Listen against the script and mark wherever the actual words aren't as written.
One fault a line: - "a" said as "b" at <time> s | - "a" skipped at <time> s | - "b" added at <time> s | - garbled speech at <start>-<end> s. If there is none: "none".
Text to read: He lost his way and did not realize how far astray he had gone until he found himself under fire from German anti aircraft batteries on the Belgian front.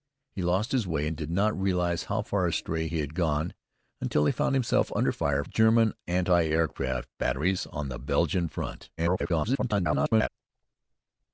- "from" skipped at 5.4 s
- garbled speech at 9.0-10.3 s